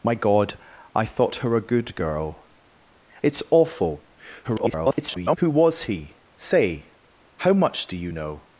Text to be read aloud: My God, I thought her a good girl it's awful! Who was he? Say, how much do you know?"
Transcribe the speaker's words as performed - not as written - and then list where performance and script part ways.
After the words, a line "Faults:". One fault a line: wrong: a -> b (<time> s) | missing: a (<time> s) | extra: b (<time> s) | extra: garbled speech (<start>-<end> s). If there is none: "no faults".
My God, I thought her a good girl it's awful! [garbled] Who was he? Say, how much do you know?"
Faults:
extra: garbled speech (4.4-5.4 s)